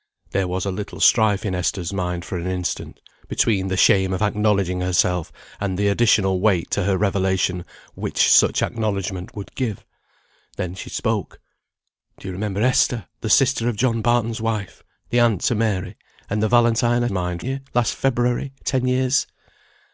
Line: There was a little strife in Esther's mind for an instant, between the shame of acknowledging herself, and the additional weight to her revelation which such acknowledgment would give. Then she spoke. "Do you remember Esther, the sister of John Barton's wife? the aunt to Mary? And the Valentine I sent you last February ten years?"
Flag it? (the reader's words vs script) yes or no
yes